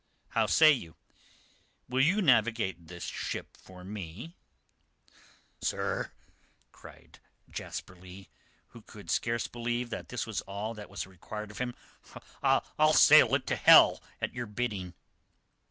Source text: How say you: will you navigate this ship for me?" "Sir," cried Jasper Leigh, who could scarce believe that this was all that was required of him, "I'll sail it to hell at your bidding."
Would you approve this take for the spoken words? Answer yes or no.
yes